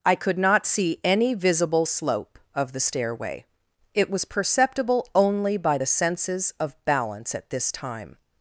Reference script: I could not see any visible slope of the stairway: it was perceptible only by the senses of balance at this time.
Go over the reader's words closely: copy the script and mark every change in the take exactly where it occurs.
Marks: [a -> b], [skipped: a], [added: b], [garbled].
I could not see any visible slope of the stairway: it was perceptible only by the senses of balance at this time.